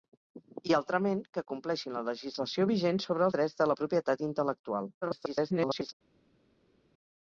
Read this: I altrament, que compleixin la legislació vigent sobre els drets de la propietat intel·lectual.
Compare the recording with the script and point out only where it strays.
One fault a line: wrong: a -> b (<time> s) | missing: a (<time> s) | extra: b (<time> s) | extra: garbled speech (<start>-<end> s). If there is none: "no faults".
missing: els (3.3 s)
extra: garbled speech (5.0-5.9 s)